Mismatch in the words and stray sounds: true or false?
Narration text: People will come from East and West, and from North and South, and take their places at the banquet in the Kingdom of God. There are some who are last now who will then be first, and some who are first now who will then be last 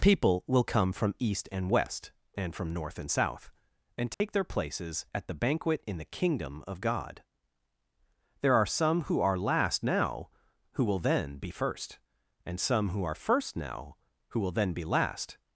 true